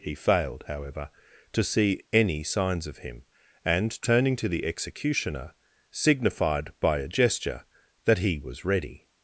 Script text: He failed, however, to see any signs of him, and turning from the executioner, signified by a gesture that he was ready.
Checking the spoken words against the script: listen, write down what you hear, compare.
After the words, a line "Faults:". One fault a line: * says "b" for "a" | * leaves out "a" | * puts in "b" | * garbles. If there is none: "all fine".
He failed, however, to see any signs of him, and turning to the executioner, signified by a gesture that he was ready.
Faults:
* says "to" for "from"